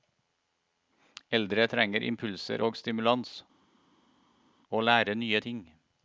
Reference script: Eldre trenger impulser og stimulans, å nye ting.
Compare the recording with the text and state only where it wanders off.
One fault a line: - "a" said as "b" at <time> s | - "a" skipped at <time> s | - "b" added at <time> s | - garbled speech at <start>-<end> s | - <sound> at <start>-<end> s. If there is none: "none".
- "lære" added at 4.8 s